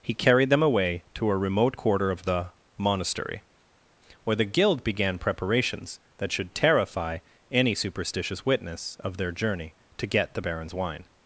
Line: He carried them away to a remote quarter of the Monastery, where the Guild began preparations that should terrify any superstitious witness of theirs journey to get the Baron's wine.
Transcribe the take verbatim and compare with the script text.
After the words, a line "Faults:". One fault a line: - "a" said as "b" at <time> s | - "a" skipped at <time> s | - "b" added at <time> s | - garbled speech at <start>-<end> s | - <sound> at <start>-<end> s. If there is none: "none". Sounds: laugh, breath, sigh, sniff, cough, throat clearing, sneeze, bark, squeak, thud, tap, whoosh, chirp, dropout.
He carried them away to a remote quarter of the Monastery, where the Guild began preparations that should terrify any superstitious witness of their journey to get the Baron's wine.
Faults:
- "theirs" said as "their" at 9.2 s